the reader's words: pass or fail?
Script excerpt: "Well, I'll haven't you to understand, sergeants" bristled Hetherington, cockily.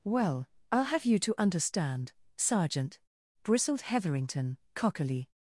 fail